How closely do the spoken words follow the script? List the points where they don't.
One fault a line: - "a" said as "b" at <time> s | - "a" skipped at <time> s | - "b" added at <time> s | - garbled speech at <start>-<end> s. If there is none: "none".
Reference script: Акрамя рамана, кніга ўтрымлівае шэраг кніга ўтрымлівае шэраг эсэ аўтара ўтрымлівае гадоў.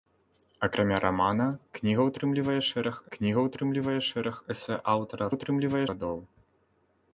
none